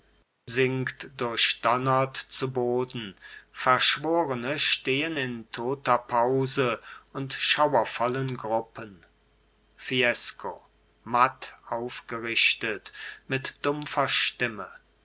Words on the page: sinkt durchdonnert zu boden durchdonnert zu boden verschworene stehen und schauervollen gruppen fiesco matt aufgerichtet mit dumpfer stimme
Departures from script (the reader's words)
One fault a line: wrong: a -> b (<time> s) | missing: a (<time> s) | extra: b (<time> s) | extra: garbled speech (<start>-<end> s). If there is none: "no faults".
wrong: durchdonnert zu boden verschworene stehen -> verschworene stehen in toter pause (3.5 s)